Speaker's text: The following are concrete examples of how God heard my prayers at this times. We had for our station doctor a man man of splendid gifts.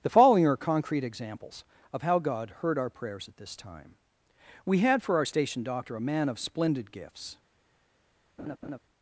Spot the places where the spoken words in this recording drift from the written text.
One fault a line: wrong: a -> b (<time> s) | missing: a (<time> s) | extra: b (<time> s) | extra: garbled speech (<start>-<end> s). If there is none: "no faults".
wrong: my -> our (2.8 s)
wrong: times -> time (3.5 s)
missing: man (6.3 s)